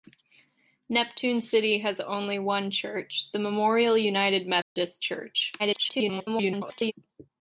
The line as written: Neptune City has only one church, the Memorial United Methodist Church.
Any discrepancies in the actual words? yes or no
yes